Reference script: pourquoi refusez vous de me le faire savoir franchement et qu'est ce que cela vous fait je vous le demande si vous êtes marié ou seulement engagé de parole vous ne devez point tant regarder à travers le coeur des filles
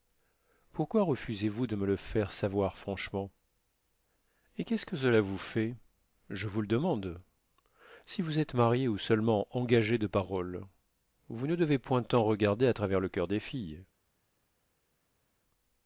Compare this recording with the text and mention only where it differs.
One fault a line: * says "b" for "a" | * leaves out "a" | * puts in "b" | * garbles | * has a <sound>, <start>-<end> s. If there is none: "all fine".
all fine